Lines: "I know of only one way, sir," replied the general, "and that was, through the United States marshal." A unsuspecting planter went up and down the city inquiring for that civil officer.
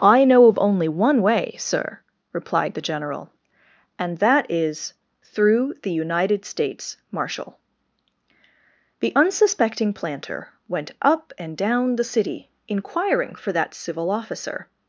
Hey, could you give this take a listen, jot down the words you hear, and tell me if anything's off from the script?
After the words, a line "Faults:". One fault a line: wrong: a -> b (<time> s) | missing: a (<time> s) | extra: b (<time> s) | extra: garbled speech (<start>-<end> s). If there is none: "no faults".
"I know of only one way, sir," replied the general, "and that is, through the United States marshal." The unsuspecting planter went up and down the city inquiring for that civil officer.
Faults:
wrong: was -> is (4.5 s)
wrong: A -> The (9.0 s)